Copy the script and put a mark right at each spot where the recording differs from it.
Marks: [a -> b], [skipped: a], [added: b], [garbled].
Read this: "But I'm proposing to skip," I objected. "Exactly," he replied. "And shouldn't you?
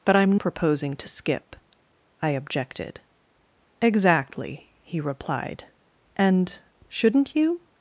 "But I'm proposing to skip," I objected. "Exactly," he replied. "And shouldn't you?